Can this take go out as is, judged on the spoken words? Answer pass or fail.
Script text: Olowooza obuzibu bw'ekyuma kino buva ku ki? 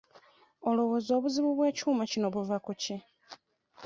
pass